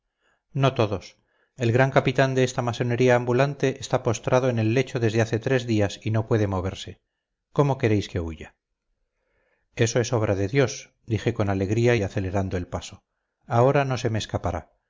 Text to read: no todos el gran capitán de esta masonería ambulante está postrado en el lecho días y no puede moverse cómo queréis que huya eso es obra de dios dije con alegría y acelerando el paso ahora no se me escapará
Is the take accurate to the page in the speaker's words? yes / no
no